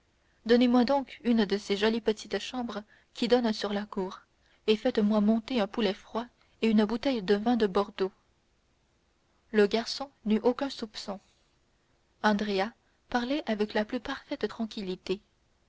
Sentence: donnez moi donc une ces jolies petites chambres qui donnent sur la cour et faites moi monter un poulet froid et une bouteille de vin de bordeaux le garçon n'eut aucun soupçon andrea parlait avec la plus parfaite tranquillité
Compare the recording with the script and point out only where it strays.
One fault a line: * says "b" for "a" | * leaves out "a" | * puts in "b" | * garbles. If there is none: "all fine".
* puts in "de"